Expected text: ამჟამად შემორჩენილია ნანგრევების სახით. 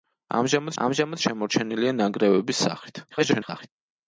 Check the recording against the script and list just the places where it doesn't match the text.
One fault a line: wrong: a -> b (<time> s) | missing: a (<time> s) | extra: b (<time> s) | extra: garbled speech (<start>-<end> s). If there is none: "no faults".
extra: ამჟამად (0.8 s)
extra: garbled speech (3.1-3.7 s)